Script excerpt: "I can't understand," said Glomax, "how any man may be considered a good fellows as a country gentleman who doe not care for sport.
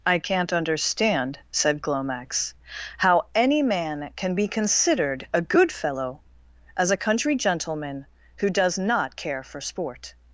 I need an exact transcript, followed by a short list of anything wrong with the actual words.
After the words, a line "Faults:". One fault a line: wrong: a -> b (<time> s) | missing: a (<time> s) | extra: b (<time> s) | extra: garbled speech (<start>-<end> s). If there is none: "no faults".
"I can't understand," said Glomax, "how any man can be considered a good fellow as a country gentleman who does not care for sport.
Faults:
wrong: may -> can (4.2 s)
wrong: fellows -> fellow (5.7 s)
wrong: doe -> does (8.5 s)